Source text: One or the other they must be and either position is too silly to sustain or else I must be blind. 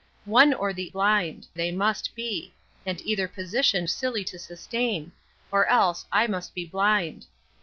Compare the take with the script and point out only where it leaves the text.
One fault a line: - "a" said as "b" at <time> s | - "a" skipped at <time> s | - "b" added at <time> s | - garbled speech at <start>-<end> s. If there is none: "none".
- "other" said as "blind" at 0.9 s
- "is too" skipped at 3.9 s